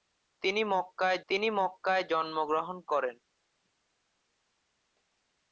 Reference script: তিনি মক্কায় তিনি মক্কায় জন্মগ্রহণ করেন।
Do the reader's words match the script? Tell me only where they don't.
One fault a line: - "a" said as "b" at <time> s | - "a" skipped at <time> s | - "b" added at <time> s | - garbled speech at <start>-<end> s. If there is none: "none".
none